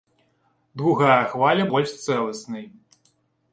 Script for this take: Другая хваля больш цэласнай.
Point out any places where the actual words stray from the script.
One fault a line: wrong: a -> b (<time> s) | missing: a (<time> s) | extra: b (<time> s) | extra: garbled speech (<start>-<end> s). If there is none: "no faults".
no faults